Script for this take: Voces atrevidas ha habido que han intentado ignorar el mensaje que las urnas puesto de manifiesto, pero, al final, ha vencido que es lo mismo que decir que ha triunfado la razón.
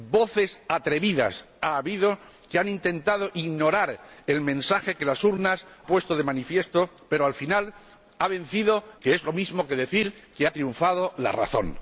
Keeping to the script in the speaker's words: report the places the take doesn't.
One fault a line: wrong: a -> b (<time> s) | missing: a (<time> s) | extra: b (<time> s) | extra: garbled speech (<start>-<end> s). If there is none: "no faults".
no faults